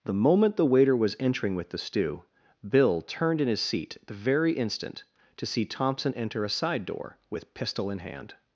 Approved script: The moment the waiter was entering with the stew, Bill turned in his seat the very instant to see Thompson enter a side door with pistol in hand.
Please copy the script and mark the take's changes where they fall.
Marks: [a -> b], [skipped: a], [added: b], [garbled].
The moment the waiter was entering with the stew, Bill turned in his seat the very instant to see Thompson enter a side door with pistol in hand.